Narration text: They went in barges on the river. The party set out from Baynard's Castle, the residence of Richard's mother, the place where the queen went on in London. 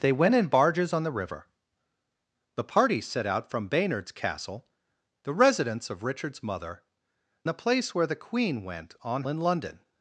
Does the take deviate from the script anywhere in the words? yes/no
no